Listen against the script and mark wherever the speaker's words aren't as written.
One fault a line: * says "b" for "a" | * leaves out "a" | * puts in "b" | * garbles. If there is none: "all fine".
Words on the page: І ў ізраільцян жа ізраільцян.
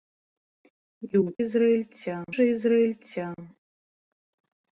all fine